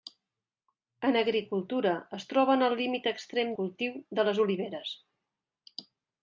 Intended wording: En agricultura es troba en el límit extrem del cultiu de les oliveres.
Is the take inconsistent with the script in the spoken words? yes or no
yes